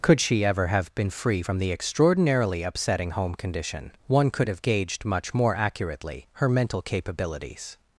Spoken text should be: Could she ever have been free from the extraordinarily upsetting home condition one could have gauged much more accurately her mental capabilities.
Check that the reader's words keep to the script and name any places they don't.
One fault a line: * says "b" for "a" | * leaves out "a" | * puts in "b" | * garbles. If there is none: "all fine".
all fine